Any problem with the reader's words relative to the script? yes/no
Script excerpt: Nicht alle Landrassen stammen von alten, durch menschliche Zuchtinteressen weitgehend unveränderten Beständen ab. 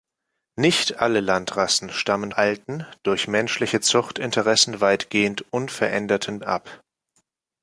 yes